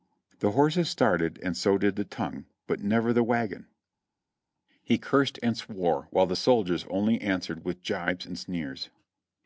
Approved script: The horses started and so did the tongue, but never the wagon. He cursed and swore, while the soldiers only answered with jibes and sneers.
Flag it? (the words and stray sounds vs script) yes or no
no